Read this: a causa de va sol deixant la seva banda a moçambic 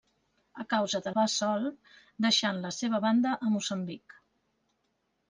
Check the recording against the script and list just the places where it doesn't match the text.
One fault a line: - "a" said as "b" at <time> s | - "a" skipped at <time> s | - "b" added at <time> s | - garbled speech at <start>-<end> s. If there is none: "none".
none